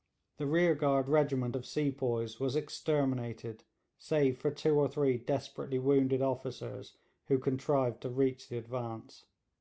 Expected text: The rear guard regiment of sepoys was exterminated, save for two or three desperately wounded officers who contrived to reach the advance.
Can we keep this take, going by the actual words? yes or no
yes